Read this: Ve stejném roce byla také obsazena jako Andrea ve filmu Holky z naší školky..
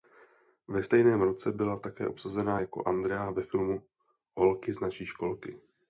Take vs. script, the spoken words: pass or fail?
pass